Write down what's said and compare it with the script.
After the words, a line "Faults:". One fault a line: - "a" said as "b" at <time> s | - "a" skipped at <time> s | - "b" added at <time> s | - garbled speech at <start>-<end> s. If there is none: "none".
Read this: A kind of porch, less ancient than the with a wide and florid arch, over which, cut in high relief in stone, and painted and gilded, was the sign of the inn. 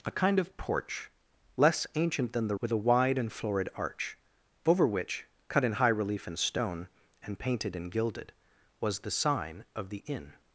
A kind of porch, less ancient than the with a wide and florid arch, over which, cut in high relief in stone, and painted and gilded, was the sign of the inn.
Faults:
none